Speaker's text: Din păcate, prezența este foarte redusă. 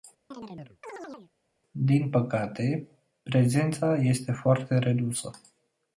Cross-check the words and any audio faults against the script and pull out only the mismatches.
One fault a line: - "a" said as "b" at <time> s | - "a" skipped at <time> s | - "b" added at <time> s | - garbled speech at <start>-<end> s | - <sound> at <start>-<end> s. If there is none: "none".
- chirp at 0.3-1.3 s